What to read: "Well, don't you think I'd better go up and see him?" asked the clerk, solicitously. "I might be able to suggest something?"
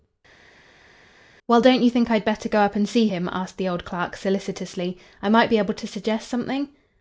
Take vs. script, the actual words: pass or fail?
fail